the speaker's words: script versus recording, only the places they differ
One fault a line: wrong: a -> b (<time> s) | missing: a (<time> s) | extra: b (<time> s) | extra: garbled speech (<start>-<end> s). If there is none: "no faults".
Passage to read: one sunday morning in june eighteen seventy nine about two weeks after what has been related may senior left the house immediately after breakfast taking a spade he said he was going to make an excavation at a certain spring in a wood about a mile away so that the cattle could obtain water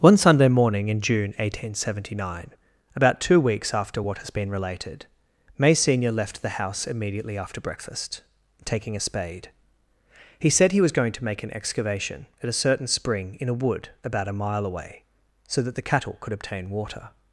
no faults